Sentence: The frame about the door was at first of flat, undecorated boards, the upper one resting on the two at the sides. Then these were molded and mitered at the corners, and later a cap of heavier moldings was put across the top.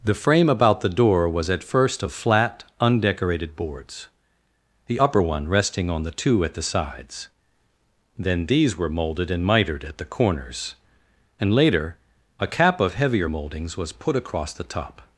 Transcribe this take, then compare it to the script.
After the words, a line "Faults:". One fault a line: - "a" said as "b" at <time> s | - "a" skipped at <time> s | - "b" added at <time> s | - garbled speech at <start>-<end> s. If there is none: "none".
The frame about the door was at first of flat, undecorated boards, the upper one resting on the two at the sides. Then these were molded and mitered at the corners, and later a cap of heavier moldings was put across the top.
Faults:
none